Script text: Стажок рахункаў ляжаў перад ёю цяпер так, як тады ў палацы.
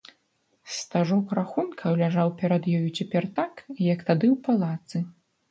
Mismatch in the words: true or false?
false